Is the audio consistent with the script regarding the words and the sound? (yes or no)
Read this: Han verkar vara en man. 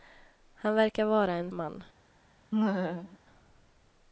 no